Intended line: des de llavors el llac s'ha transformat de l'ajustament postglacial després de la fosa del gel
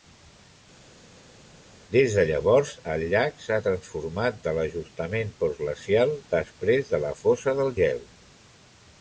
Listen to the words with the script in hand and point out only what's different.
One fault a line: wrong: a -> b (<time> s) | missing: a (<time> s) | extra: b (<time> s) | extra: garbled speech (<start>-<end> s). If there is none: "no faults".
no faults